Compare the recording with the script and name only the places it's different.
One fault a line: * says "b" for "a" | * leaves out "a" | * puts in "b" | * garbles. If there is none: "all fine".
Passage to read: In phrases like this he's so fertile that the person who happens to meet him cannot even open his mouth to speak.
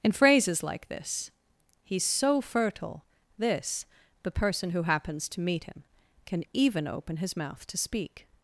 * says "this" for "that"
* says "can" for "cannot"